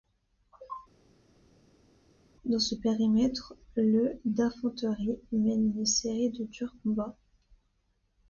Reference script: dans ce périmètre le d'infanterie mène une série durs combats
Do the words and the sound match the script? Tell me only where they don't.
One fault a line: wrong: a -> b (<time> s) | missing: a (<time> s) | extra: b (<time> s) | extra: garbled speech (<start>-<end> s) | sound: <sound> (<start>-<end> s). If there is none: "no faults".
extra: de (6.3 s)